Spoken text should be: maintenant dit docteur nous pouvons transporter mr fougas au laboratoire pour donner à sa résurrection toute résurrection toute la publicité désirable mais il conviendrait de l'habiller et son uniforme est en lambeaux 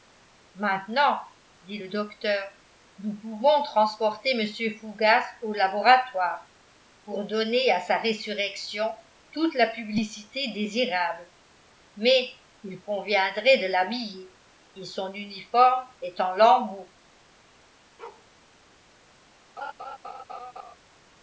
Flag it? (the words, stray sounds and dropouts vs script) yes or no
yes